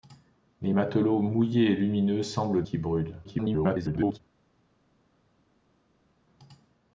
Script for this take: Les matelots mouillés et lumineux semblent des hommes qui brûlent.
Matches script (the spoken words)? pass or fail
fail